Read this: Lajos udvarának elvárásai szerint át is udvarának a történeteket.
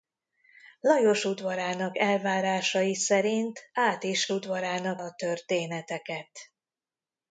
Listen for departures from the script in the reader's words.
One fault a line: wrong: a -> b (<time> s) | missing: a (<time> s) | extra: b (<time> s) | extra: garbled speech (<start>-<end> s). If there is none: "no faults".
no faults